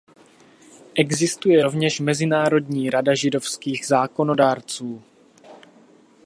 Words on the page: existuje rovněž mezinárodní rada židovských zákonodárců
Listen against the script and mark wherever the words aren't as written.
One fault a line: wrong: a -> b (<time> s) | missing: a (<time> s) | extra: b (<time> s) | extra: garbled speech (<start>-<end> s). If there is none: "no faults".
no faults